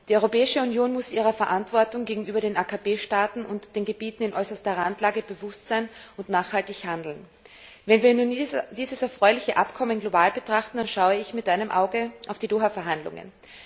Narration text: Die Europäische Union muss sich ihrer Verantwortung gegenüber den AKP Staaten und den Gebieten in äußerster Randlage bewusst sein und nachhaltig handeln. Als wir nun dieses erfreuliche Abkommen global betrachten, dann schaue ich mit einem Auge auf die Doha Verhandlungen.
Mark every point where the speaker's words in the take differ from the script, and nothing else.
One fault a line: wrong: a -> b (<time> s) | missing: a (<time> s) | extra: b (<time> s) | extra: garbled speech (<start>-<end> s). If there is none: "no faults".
wrong: Als -> Wenn (7.8 s)